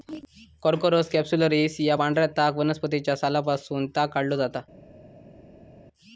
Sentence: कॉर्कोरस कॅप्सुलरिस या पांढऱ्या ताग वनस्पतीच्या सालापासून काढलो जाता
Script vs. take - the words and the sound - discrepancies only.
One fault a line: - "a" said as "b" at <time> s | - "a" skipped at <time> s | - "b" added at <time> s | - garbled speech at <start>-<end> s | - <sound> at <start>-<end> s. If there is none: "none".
- "ताग" added at 3.9 s